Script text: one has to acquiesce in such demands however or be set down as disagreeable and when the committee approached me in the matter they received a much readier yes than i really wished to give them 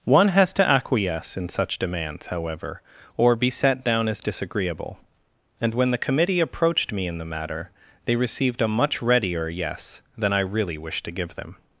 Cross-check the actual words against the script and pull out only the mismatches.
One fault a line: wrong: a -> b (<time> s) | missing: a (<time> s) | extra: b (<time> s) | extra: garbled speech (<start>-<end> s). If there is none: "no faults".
no faults